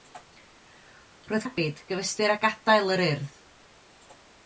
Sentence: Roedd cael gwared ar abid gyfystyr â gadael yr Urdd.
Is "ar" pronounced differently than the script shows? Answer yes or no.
yes